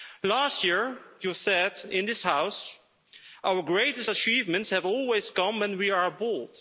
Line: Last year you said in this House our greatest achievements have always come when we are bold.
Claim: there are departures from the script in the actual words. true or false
false